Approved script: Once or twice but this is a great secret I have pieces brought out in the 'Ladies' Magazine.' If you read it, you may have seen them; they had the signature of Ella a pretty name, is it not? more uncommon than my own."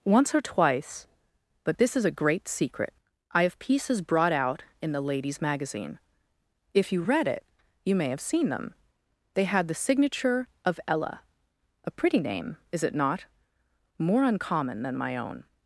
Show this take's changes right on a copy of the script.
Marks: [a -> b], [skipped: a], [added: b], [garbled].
Once or twice but this is a great secret I have pieces brought out in the 'Ladies' Magazine.' If you read it, you may have seen them; they had the signature of Ella a pretty name, is it not? more uncommon than my own."